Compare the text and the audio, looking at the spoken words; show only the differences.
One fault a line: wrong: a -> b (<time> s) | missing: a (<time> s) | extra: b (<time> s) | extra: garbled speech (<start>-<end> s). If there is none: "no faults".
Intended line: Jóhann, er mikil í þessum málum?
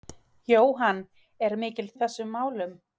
no faults